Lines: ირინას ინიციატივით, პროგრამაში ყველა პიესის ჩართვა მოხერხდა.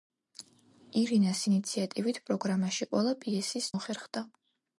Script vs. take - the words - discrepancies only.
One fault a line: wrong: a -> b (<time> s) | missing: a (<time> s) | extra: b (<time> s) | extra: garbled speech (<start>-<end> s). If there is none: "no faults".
missing: ჩართვა (3.7 s)